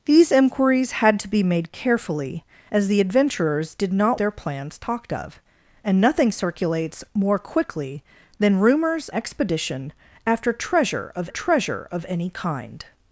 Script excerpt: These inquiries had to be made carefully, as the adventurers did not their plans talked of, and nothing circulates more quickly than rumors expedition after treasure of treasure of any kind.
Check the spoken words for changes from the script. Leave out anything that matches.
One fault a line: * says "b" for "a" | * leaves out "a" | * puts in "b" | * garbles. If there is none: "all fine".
all fine